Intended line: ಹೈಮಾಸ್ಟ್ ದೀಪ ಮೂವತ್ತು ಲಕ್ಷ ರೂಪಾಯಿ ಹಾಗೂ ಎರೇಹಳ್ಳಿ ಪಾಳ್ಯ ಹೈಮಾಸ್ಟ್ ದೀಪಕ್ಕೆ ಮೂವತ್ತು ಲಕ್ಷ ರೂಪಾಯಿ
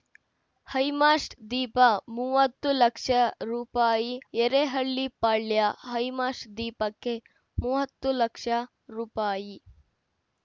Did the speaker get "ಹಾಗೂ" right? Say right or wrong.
wrong